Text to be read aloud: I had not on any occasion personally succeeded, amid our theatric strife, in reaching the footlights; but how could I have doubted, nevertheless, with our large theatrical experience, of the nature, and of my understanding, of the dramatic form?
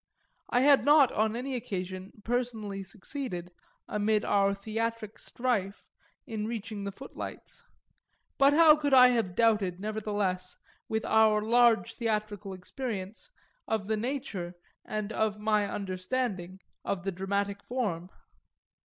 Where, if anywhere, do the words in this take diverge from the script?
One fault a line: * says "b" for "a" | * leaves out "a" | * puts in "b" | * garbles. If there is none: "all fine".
all fine